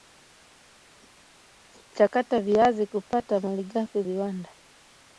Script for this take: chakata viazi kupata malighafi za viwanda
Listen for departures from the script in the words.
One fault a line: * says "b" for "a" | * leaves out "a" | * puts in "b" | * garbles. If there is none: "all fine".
* leaves out "za"